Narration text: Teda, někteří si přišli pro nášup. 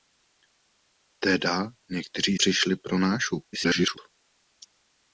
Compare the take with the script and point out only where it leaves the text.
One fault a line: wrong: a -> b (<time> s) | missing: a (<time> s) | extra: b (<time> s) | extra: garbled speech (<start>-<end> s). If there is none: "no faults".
missing: si (2.4 s)
extra: garbled speech (3.5-4.0 s)